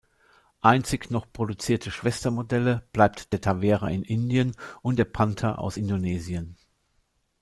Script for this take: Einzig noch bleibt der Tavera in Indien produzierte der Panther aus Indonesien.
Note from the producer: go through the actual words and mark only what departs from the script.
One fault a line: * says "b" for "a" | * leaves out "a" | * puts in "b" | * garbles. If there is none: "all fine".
* puts in "produzierte Schwestermodelle"
* says "und" for "produzierte"